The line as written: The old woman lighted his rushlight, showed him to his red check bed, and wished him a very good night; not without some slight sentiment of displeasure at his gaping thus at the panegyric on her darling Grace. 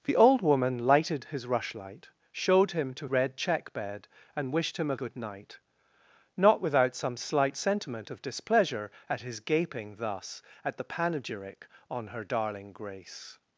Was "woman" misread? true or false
false